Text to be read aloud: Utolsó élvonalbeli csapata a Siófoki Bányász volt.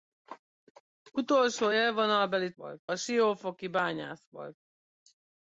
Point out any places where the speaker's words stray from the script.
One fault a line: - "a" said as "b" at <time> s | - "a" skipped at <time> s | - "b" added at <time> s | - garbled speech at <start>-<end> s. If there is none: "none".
- "csapata" said as "volt" at 2.5 s